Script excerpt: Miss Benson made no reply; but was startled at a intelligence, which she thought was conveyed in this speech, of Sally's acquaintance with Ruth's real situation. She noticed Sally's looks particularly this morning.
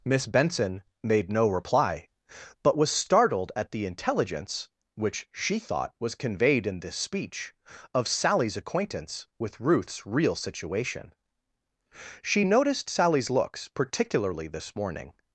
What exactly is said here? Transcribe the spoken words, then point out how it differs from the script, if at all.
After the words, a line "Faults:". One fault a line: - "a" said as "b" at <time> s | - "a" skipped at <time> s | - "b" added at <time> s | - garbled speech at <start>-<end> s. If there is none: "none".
Miss Benson made no reply; but was startled at the intelligence, which she thought was conveyed in this speech, of Sally's acquaintance with Ruth's real situation. She noticed Sally's looks particularly this morning.
Faults:
- "a" said as "the" at 3.7 s